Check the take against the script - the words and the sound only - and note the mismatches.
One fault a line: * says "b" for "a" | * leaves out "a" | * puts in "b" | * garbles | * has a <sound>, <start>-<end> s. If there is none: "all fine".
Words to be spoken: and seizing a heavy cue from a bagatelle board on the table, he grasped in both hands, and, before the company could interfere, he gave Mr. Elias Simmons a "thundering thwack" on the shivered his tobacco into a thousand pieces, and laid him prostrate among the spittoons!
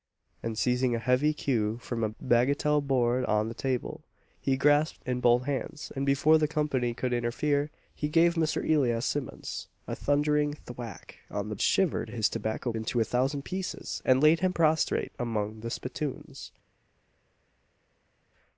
all fine